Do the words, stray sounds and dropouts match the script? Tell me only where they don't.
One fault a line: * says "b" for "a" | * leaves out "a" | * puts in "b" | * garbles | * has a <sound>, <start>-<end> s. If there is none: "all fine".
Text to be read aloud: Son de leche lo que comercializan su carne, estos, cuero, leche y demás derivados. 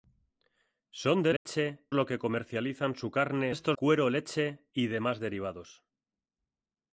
* has a dropout, 1.4-1.5 s